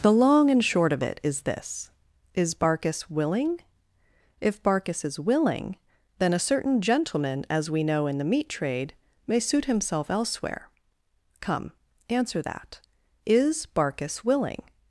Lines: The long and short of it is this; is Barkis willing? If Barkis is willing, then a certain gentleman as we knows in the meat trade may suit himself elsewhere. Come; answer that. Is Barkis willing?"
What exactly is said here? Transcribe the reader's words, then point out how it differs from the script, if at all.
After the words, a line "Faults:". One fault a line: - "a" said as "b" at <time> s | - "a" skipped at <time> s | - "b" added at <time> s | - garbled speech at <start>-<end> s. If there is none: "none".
The long and short of it is this; is Barkis willing? If Barkis is willing, then a certain gentleman as we know in the meat trade may suit himself elsewhere. Come; answer that. Is Barkis willing?"
Faults:
- "knows" said as "know" at 7.8 s